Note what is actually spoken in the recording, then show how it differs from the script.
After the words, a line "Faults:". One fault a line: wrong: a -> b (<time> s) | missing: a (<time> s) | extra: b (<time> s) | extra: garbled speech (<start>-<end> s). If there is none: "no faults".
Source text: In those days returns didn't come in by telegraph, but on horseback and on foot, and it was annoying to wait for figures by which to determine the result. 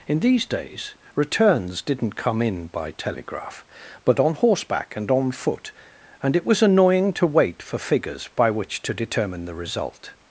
In these days returns didn't come in by telegraph, but on horseback and on foot, and it was annoying to wait for figures by which to determine the result.
Faults:
wrong: those -> these (0.2 s)